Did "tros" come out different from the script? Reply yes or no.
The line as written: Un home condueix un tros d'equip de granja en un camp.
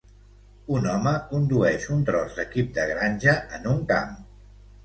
no